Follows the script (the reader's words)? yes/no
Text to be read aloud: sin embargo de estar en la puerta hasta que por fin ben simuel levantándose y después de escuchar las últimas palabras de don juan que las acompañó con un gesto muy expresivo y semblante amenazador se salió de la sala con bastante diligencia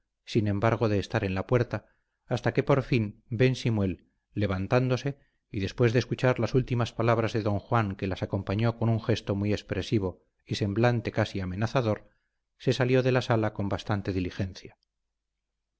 no